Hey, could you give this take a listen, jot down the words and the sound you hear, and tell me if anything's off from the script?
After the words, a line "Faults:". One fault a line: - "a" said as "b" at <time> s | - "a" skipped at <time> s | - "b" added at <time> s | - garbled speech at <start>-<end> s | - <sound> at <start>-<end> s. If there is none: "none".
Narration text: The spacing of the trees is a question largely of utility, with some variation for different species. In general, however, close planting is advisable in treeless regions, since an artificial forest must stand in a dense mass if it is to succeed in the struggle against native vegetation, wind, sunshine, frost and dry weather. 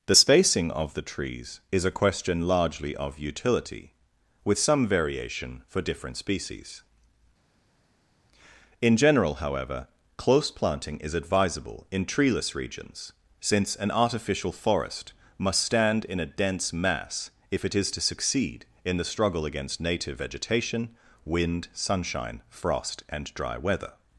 The spacing of the trees is a question largely of utility, with some variation for different species. In general, however, close planting is advisable in treeless regions, since an artificial forest must stand in a dense mass if it is to succeed in the struggle against native vegetation, wind, sunshine, frost and dry weather.
Faults:
none